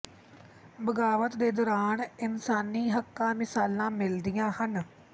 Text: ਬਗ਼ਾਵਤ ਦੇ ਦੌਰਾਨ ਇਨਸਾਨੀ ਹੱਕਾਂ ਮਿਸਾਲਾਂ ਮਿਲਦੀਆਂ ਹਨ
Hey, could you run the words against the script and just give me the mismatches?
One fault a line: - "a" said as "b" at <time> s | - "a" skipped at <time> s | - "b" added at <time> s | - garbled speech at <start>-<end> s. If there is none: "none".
none